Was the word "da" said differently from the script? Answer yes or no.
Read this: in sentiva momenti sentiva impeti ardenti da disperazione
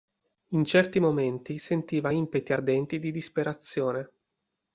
yes